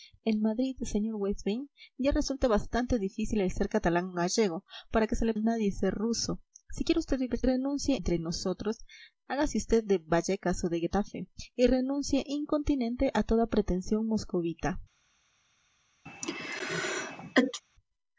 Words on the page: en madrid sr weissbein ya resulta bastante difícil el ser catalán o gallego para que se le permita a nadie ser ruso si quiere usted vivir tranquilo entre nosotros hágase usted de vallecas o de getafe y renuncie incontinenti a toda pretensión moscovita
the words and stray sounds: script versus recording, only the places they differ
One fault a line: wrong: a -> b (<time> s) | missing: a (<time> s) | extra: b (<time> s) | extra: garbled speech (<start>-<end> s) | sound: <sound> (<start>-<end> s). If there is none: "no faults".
missing: permita (5.3 s)
wrong: tranquilo -> renuncie (7.4 s)
sound: sneeze (16.1-17.6 s)